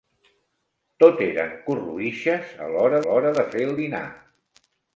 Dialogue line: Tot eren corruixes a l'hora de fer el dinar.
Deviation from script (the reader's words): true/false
true